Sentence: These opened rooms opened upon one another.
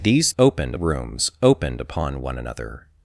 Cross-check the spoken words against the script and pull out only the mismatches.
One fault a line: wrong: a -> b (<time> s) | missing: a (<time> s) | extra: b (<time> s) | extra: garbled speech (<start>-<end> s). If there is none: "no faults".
no faults